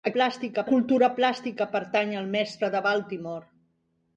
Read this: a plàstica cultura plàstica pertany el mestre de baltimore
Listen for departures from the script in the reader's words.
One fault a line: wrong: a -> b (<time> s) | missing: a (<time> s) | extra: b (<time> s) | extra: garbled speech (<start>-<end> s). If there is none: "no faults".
no faults